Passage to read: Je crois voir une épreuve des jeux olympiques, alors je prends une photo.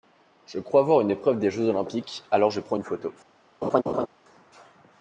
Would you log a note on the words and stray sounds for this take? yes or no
yes